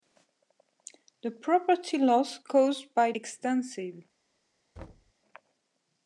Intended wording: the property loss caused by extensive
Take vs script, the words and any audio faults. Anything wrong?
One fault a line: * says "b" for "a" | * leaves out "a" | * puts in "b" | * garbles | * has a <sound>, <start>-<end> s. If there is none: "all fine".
* has a thud, 4.8-5.1 s